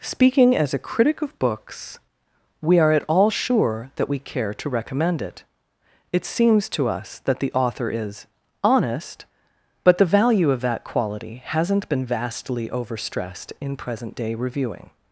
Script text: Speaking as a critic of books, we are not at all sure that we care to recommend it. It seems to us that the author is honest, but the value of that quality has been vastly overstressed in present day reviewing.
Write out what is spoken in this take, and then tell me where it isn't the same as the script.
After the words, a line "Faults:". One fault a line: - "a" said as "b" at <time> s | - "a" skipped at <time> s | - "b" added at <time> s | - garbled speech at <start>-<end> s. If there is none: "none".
Speaking as a critic of books, we are at all sure that we care to recommend it. It seems to us that the author is honest, but the value of that quality hasn't been vastly overstressed in present day reviewing.
Faults:
- "not" skipped at 2.9 s
- "has" said as "hasn't" at 11.4 s